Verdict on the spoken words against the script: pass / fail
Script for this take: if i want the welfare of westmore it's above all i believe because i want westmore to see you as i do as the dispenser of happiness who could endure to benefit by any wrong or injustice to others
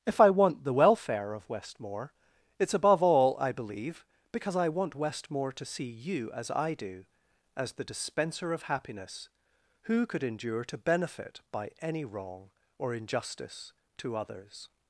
pass